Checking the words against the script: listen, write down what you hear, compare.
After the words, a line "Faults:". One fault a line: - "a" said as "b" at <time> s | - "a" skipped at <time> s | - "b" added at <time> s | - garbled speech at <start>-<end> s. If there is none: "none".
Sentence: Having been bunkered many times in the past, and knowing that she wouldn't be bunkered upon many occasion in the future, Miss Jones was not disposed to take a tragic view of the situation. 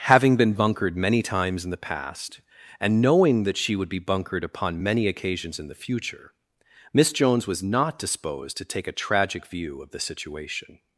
Having been bunkered many times in the past, and knowing that she would be bunkered upon many occasions in the future, Miss Jones was not disposed to take a tragic view of the situation.
Faults:
- "wouldn't" said as "would" at 3.8 s
- "occasion" said as "occasions" at 5.1 s